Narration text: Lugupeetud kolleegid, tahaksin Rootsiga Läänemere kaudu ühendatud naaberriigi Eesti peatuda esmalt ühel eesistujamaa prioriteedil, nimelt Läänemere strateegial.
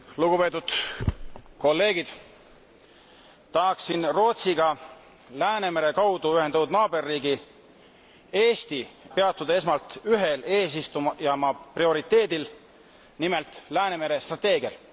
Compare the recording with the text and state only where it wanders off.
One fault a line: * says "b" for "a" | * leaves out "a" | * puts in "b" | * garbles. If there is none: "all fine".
all fine